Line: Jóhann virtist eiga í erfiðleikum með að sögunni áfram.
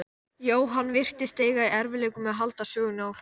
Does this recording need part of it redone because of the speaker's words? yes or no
yes